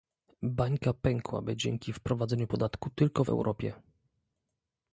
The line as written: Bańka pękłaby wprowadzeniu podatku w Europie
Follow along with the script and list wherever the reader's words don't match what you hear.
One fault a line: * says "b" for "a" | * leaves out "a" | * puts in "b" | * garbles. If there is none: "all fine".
* puts in "dzięki"
* puts in "tylko"